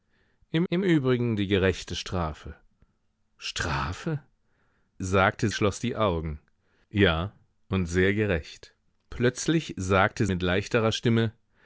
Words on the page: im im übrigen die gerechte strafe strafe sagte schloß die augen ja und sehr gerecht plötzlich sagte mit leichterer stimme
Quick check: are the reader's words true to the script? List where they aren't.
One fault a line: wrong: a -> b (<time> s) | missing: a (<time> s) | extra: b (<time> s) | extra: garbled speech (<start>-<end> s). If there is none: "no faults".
no faults